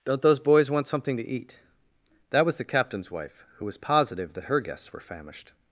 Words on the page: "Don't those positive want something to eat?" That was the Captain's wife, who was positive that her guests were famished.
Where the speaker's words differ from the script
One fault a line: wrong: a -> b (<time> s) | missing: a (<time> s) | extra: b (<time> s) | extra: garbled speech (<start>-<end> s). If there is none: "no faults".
wrong: positive -> boys (0.4 s)